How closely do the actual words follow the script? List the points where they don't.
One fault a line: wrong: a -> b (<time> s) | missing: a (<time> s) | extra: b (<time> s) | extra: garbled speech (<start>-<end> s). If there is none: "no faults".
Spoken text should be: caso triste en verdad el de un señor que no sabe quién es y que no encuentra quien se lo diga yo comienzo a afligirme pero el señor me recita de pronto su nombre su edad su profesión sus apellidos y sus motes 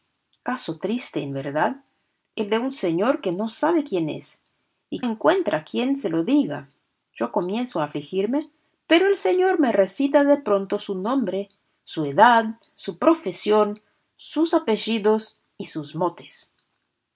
missing: que no (5.0 s)